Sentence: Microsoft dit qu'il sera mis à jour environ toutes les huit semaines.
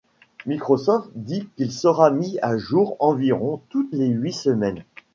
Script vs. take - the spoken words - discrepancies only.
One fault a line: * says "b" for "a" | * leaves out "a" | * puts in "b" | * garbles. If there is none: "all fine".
all fine